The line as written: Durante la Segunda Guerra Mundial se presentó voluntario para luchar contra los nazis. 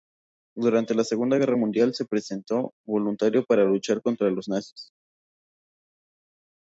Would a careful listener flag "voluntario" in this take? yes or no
no